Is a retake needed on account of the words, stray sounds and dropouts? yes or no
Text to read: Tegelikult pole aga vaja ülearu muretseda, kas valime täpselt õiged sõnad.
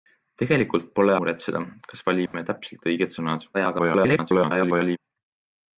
yes